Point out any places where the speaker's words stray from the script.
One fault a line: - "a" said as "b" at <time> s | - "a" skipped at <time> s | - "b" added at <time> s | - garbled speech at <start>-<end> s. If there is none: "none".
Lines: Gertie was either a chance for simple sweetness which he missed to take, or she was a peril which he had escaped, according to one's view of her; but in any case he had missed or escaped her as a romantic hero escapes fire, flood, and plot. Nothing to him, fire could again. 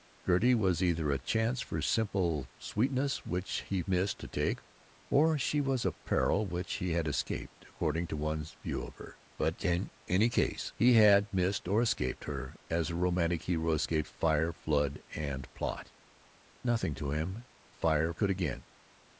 none